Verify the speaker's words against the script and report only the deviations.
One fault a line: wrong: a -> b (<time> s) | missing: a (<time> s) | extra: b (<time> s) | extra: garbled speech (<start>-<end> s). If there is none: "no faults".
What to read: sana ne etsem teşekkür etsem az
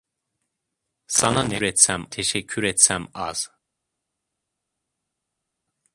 no faults